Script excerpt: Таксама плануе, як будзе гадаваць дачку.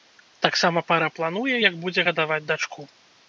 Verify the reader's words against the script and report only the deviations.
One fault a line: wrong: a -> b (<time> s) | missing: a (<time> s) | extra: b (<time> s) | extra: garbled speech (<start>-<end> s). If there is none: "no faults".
extra: пара (0.9 s)